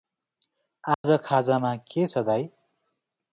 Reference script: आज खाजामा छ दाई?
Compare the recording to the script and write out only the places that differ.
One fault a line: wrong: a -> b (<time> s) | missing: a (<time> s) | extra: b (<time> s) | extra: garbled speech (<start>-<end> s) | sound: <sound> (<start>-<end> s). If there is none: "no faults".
sound: dropout (0.9-1.0 s)
extra: के (1.9 s)